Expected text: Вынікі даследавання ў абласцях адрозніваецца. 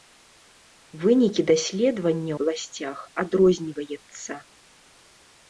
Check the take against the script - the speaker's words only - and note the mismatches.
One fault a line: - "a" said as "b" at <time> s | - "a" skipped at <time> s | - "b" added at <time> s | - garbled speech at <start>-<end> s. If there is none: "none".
- "ў" skipped at 2.4 s